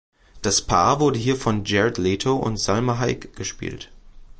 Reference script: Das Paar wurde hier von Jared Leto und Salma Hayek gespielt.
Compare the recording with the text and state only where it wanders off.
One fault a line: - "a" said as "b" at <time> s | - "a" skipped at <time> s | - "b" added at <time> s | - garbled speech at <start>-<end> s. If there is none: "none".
none